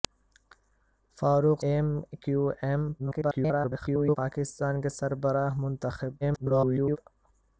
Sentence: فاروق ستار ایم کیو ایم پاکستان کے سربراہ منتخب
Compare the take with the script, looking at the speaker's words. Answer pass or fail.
fail